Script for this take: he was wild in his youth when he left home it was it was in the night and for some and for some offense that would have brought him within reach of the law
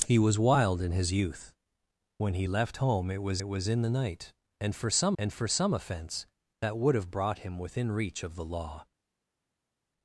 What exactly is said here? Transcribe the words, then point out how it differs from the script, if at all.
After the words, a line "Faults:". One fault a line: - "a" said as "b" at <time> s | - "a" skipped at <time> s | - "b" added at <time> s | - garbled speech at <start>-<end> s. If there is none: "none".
he was wild in his youth when he left home it was it was in the night and for some and for some offense that would have brought him within reach of the law
Faults:
none